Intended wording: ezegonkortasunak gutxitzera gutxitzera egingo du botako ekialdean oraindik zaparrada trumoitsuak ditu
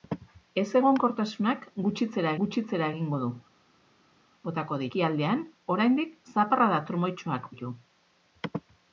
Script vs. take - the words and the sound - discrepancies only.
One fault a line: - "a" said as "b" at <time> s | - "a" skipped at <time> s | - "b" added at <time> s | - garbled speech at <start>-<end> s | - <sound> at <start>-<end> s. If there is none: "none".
none